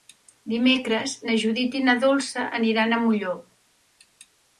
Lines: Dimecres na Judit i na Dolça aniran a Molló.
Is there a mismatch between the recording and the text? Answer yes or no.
no